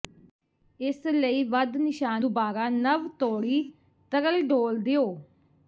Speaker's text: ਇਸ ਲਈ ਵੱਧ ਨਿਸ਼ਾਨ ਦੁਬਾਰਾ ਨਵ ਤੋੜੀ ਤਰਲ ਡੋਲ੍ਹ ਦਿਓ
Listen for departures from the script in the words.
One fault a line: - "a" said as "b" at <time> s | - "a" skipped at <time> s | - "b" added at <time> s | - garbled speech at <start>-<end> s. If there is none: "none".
none